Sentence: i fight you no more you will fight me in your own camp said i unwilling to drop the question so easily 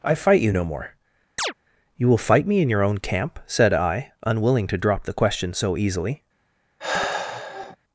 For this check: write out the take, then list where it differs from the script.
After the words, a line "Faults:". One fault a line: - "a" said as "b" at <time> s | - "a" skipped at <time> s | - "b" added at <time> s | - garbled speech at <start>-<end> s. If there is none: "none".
i fight you no more you will fight me in your own camp said i unwilling to drop the question so easily
Faults:
none